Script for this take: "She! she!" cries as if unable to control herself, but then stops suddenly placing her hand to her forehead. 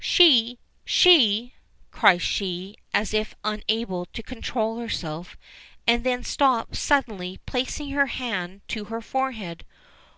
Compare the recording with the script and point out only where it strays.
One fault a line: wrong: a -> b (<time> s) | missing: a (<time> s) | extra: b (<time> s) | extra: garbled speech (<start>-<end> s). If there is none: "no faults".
extra: she (2.2 s)
wrong: but -> and (5.9 s)